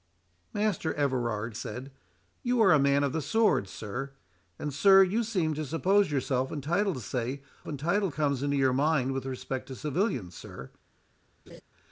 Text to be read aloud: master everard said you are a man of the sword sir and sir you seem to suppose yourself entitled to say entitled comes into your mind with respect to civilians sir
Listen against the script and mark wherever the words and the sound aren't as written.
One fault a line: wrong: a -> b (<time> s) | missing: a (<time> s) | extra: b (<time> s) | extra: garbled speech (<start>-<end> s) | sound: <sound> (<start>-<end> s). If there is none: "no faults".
sound: laugh (11.5-11.6 s)